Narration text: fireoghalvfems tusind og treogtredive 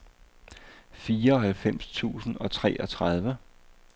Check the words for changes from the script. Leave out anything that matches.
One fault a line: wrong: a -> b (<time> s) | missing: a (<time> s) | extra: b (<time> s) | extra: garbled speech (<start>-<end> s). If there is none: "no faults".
no faults